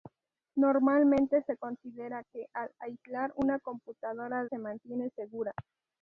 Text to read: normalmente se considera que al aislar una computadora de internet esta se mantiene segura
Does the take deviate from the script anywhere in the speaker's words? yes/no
yes